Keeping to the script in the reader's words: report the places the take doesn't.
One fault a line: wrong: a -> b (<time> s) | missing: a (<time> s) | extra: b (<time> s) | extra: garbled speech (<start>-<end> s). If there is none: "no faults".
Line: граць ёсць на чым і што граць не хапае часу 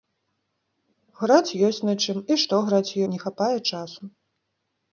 no faults